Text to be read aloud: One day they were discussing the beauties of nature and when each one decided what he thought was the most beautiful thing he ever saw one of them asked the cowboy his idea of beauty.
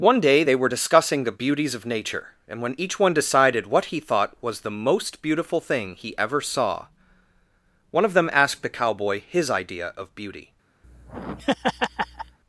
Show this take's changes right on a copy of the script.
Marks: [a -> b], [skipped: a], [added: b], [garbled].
One day they were discussing the beauties of nature and when each one decided what he thought was the most beautiful thing he ever saw one of them asked the cowboy his idea of beauty.